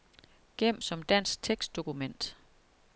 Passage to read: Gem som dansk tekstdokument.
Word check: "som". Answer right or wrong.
right